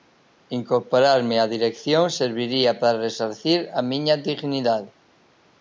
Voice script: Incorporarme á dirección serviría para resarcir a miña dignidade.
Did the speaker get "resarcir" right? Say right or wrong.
right